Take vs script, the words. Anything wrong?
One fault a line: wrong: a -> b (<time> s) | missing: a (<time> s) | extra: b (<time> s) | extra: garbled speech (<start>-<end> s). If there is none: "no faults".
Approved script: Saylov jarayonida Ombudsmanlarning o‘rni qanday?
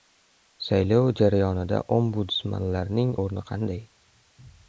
no faults